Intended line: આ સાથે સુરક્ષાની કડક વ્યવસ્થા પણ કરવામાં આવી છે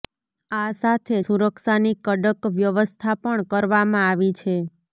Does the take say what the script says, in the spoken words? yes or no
yes